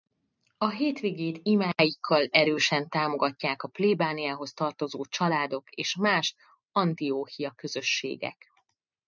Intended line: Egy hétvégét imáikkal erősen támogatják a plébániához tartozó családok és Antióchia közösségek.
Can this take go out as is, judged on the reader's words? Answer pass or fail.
fail